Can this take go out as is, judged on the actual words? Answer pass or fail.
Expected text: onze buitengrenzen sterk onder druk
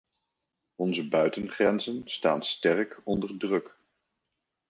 fail